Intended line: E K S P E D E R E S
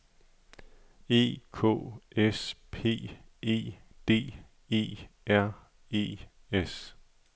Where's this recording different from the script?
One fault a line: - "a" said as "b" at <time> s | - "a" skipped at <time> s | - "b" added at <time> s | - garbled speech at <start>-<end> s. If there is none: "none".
none